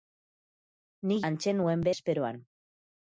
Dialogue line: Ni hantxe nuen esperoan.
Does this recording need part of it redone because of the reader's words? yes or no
no